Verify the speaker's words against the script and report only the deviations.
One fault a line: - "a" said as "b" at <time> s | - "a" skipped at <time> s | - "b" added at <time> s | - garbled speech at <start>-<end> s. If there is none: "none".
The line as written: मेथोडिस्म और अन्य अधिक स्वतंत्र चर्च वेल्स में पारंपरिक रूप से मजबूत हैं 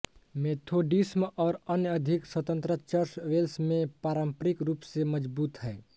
none